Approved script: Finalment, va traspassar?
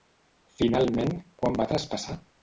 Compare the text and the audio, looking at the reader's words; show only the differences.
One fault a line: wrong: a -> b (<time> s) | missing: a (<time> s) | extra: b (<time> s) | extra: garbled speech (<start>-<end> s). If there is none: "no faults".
extra: quan (1.4 s)